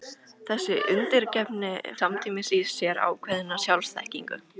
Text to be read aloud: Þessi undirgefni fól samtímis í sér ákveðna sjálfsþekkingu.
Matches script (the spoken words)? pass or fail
fail